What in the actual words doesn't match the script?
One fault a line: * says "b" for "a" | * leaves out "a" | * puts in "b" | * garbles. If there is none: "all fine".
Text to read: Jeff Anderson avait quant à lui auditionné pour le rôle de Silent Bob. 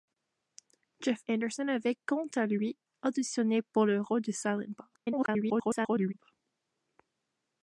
* garbles